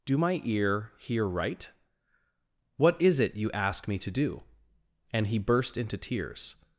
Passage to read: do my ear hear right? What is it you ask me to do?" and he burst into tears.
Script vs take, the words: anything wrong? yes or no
no